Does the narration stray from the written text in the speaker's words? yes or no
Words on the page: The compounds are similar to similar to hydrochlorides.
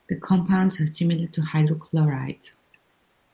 yes